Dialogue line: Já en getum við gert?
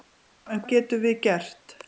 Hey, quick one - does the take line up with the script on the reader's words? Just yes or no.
yes